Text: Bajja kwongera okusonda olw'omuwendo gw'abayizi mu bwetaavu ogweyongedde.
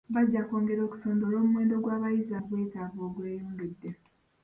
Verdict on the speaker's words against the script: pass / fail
pass